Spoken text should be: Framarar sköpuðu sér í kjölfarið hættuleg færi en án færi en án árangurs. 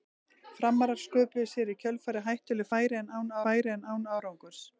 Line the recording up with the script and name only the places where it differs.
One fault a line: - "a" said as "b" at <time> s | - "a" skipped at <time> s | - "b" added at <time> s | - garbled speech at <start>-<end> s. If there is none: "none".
none